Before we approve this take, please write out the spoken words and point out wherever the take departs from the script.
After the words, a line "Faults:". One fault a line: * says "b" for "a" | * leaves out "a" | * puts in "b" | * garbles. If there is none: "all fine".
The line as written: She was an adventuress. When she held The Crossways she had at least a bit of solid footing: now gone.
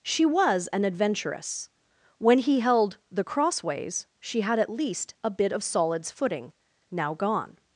She was an adventuress. When he held The Crossways she had at least a bit of solids footing: now gone.
Faults:
* says "he" for "she"
* says "solids" for "solid"